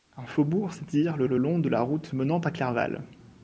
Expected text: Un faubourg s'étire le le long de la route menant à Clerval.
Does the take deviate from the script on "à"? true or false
false